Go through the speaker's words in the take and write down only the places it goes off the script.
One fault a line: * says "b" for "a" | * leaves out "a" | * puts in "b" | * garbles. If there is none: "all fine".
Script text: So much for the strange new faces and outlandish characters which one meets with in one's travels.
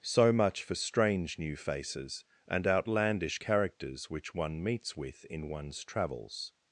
* leaves out "the"